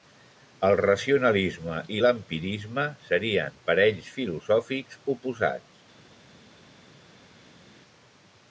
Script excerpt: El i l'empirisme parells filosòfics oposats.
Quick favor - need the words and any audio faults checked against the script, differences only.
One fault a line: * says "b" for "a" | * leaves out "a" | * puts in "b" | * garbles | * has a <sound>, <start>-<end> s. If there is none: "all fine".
* puts in "racionalisme"
* puts in "serien"